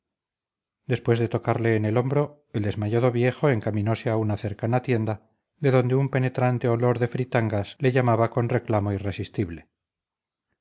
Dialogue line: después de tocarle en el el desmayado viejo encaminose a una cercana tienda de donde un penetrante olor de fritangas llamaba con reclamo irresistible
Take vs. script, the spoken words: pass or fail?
fail